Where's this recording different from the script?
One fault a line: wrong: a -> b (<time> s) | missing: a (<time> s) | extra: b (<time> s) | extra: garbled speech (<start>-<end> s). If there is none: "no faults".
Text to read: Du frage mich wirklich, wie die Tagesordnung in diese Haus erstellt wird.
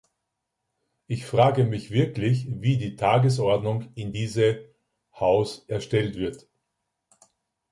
wrong: Du -> Ich (1.1 s)